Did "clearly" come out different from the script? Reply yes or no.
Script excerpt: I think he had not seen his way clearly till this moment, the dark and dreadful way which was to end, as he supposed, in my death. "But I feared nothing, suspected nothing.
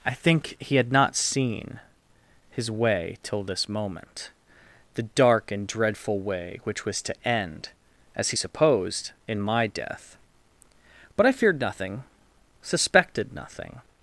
yes